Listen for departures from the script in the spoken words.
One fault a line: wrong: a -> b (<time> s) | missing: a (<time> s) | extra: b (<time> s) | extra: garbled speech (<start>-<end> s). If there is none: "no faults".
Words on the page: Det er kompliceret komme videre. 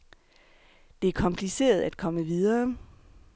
extra: at (1.8 s)